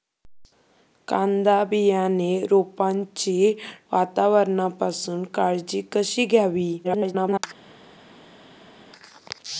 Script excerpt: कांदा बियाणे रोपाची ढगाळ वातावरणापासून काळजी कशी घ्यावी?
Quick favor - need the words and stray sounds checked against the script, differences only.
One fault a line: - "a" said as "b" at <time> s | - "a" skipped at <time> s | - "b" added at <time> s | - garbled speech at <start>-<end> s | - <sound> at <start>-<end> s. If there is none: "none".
- "ढगाळ" skipped at 3.5 s
- garbled speech at 6.8-7.4 s